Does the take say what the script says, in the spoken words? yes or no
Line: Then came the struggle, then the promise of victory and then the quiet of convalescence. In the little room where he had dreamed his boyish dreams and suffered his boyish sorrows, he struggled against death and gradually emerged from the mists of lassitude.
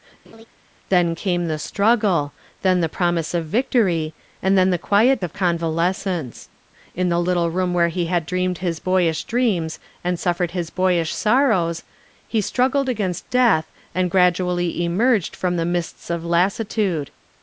yes